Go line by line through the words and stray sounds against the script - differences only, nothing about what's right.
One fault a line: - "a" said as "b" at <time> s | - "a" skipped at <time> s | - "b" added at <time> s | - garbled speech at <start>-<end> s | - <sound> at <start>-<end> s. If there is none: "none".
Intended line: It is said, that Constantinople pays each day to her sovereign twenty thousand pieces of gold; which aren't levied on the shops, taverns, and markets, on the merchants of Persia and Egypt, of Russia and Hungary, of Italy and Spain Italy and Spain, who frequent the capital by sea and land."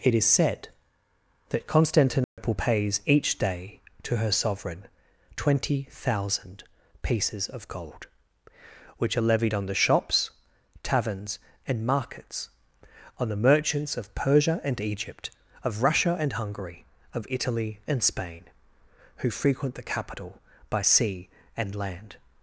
- dropout at 2.2-2.4 s
- "aren't" said as "are" at 9.2 s
- "Italy and Spain" skipped at 18.4 s